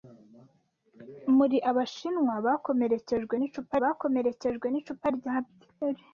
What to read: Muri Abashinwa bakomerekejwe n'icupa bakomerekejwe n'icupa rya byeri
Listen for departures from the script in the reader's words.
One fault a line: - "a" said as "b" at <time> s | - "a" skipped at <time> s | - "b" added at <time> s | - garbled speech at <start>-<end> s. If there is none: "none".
none